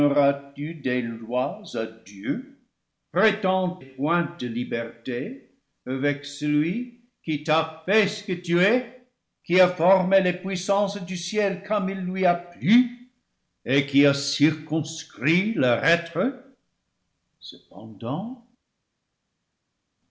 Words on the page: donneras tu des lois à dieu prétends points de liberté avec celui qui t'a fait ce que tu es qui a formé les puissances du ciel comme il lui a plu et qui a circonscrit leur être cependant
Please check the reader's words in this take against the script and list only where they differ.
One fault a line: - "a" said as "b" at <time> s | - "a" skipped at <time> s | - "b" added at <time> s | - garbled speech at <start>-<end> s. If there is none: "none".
none